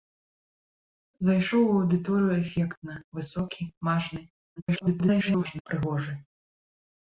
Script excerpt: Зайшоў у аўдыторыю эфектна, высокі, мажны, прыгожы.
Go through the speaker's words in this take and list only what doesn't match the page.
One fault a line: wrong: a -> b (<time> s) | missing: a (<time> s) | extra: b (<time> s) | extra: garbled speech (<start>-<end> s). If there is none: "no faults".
extra: garbled speech (4.6-5.6 s)